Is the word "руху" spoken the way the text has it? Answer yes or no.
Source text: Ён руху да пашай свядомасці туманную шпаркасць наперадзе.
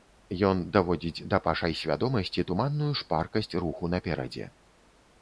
no